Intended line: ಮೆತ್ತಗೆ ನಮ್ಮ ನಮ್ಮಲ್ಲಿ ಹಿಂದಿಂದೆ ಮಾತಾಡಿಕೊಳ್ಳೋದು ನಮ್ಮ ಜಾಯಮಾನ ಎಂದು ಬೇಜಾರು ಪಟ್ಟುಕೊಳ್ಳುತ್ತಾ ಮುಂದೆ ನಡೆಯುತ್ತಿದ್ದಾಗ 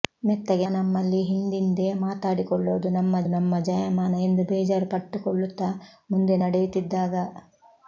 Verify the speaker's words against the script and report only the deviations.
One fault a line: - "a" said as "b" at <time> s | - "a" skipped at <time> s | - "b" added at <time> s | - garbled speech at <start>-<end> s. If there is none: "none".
- "ನಮ್ಮ" skipped at 0.7 s
- "ನಮ್ಮ" added at 3.3 s